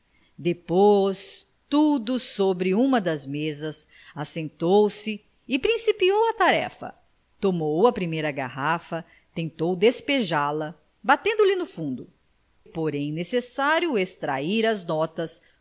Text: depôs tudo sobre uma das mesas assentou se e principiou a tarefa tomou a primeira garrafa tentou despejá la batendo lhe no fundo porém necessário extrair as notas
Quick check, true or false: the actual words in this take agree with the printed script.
true